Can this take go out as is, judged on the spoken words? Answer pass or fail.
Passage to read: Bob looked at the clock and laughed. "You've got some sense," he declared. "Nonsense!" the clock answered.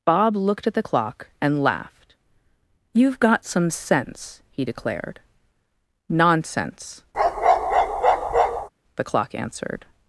pass